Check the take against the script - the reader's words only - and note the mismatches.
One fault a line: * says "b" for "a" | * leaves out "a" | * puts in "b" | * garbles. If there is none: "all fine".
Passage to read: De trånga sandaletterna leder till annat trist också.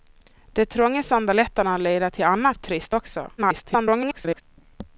* garbles